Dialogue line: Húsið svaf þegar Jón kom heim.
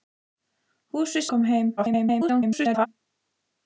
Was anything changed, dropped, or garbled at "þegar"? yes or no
yes